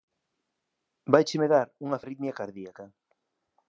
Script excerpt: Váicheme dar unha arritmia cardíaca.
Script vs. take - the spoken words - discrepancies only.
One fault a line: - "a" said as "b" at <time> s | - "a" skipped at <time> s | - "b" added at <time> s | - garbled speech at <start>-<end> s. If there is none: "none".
none